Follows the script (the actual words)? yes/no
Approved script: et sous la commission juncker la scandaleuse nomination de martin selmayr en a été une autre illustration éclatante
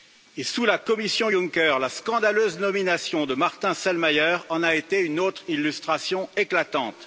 yes